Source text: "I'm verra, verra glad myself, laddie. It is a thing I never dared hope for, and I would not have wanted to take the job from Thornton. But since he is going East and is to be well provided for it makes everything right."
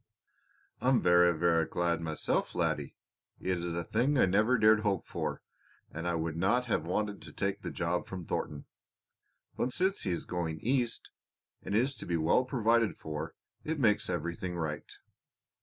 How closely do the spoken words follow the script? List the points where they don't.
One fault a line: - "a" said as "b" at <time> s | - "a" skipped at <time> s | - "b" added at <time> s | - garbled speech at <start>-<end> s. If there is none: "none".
none